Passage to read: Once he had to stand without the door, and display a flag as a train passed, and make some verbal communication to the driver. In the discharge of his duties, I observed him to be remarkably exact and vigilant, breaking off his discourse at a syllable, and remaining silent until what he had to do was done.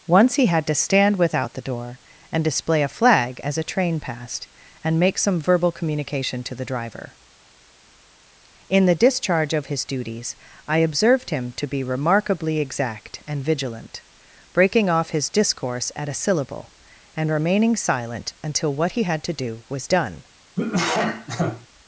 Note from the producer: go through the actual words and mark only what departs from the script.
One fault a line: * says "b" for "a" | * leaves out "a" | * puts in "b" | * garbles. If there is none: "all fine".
all fine